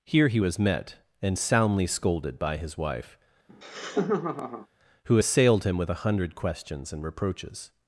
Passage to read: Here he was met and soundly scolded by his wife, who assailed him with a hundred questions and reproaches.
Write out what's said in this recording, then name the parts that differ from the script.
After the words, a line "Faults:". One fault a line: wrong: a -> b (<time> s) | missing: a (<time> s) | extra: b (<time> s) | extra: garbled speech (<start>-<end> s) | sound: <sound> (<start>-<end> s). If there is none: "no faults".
Here he was met and soundly scolded by his wife, who assailed him with a hundred questions and reproaches.
Faults:
sound: laugh (3.5-4.7 s)